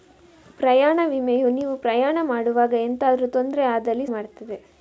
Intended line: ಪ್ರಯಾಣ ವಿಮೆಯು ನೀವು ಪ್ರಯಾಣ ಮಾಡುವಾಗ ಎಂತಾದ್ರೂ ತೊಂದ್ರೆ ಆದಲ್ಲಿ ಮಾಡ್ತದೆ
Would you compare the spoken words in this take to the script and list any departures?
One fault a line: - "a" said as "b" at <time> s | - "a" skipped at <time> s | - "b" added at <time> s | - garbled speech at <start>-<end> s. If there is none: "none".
none